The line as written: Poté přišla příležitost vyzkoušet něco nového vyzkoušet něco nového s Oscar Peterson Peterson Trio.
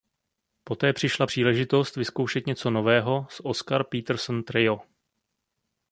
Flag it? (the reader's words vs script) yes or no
yes